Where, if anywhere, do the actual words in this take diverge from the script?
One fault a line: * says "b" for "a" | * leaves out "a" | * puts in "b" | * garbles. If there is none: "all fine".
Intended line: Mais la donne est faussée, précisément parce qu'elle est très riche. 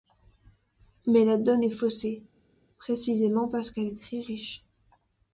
all fine